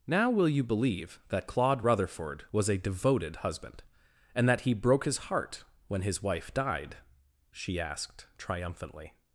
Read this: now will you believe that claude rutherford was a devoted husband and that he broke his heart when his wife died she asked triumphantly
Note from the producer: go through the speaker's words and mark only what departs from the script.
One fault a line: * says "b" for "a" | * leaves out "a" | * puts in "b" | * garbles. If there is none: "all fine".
all fine